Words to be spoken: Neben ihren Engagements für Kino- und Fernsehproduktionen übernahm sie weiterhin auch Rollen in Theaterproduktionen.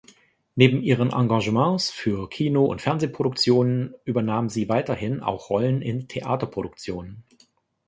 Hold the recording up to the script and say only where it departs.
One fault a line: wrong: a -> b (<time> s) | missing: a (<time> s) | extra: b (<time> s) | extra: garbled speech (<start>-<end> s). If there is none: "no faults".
no faults